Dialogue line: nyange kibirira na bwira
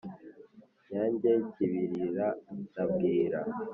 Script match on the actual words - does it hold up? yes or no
yes